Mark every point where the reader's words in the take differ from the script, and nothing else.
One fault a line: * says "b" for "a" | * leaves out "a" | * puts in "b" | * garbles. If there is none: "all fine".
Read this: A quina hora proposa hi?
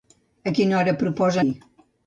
all fine